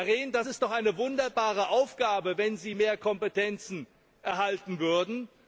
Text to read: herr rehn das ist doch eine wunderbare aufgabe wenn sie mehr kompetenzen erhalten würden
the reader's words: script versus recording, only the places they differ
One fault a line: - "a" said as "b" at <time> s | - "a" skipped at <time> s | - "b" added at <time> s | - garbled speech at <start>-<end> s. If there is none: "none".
none